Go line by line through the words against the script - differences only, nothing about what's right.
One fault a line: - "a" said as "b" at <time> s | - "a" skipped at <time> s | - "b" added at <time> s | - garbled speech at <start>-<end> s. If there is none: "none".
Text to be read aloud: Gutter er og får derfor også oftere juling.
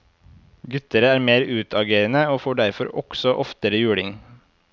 - "mer utagerende" added at 1.2 s